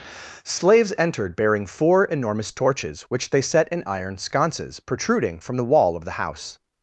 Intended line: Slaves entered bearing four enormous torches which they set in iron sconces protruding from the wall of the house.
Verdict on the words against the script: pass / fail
pass